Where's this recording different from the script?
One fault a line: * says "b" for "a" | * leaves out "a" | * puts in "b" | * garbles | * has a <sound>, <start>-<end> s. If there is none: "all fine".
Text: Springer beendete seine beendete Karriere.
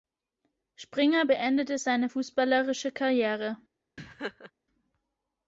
* says "fußballerische" for "beendete"
* has a laugh, 4.0-4.5 s